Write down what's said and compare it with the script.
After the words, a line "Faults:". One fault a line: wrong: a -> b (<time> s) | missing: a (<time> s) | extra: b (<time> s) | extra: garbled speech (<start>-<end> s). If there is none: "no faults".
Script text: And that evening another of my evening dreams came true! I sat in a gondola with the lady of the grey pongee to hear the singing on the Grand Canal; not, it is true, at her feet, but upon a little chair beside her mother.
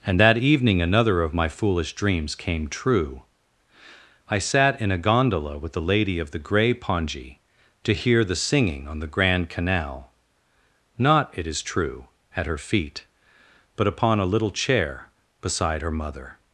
And that evening another of my foolish dreams came true! I sat in a gondola with the lady of the grey pongee to hear the singing on the Grand Canal; not, it is true, at her feet, but upon a little chair beside her mother.
Faults:
wrong: evening -> foolish (1.5 s)